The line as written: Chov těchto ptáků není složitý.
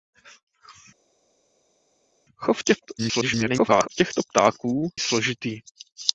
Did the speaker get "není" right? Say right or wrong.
wrong